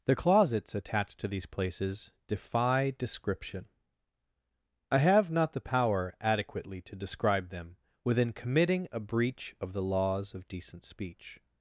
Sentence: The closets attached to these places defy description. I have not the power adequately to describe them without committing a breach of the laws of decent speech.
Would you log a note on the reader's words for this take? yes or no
yes